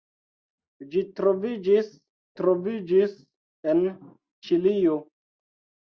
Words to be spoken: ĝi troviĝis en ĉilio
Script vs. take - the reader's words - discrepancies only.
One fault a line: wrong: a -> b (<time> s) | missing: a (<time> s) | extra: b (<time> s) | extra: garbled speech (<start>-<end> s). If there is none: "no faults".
extra: troviĝis (2.4 s)